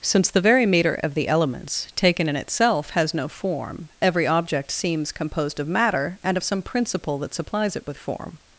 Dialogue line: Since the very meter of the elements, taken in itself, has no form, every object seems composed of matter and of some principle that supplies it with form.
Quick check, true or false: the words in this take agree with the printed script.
true